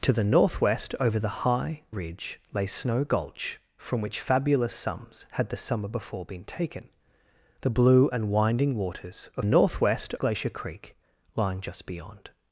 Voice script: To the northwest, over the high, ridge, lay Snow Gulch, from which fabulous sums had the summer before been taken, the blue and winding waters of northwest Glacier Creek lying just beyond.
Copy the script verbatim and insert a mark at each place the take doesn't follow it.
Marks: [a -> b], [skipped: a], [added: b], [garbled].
To the northwest, over the high, ridge, lay Snow Gulch, from which fabulous sums had the summer before been taken, the blue and winding waters of northwest Glacier Creek lying just beyond.